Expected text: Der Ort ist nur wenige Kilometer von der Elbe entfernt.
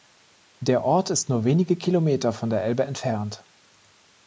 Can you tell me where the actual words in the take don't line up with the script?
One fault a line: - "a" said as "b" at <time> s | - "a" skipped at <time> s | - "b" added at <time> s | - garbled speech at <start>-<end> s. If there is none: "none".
none